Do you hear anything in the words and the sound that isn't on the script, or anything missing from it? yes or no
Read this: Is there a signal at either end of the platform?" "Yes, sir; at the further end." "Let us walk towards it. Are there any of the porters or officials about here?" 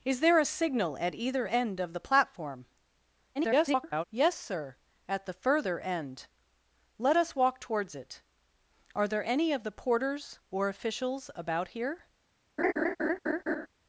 yes